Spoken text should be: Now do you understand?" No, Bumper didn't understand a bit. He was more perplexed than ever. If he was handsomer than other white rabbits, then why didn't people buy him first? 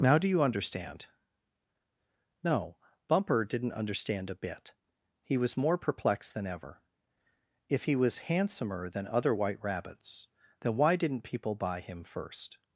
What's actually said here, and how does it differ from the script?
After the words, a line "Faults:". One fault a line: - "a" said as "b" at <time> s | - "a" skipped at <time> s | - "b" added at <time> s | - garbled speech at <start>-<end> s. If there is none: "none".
Now do you understand?" No, Bumper didn't understand a bit. He was more perplexed than ever. If he was handsomer than other white rabbits, then why didn't people buy him first?
Faults:
none